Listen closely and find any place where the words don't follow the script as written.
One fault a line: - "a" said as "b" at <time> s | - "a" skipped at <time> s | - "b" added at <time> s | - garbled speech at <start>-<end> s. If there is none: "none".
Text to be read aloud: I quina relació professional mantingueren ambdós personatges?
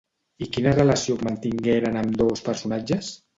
- "professional" skipped at 1.2 s